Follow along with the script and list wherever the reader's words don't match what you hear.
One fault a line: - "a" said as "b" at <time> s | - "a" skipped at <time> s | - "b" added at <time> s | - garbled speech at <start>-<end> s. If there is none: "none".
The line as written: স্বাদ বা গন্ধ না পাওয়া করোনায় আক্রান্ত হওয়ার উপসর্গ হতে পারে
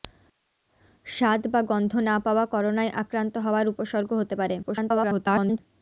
- garbled speech at 4.6-5.6 s